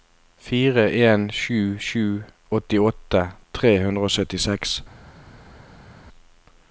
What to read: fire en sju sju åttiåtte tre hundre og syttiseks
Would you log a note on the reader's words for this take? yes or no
no